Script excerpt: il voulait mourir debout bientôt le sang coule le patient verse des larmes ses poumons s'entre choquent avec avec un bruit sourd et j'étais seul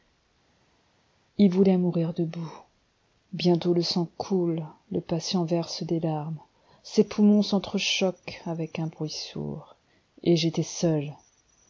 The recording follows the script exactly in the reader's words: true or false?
false